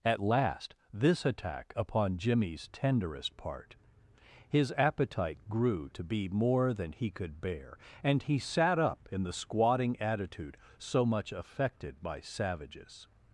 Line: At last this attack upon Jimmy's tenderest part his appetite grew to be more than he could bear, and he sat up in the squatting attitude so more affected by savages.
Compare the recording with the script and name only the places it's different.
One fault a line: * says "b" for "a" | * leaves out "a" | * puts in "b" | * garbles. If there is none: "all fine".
* says "much" for "more"